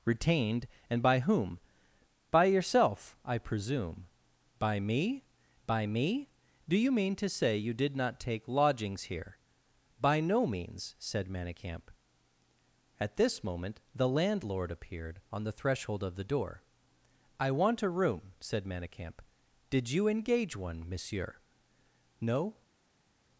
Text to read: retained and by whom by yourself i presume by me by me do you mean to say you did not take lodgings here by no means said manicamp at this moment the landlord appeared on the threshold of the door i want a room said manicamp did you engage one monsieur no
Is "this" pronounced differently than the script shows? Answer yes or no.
no